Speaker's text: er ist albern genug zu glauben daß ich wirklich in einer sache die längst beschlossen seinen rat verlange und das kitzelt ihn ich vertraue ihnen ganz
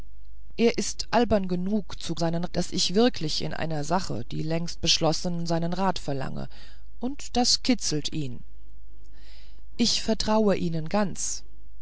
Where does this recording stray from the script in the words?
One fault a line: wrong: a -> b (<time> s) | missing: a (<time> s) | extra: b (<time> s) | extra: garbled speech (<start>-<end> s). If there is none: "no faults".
wrong: glauben -> seinen (2.2 s)